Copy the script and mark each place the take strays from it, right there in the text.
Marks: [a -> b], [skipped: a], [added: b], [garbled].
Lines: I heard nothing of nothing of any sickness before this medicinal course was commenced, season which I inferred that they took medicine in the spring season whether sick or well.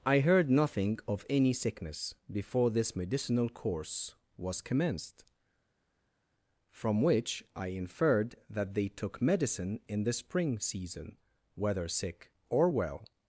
I heard nothing of [skipped: nothing of] any sickness before this medicinal course was commenced, [season -> from] which I inferred that they took medicine in the spring season whether sick or well.